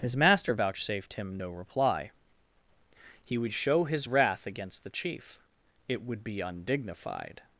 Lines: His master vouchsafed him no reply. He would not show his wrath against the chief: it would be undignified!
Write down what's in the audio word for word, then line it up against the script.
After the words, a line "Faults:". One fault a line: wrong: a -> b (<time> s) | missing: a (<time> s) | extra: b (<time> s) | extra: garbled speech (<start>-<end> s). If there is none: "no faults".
His master vouchsafed him no reply. He would show his wrath against the chief: it would be undignified!
Faults:
missing: not (3.5 s)